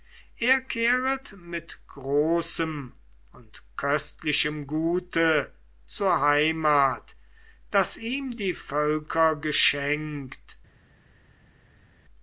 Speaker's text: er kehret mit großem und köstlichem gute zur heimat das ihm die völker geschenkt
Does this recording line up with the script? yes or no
yes